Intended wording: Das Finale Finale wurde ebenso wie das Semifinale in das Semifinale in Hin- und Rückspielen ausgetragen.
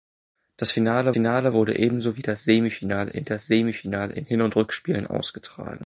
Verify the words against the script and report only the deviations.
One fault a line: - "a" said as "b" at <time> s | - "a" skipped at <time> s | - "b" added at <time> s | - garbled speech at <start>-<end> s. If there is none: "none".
none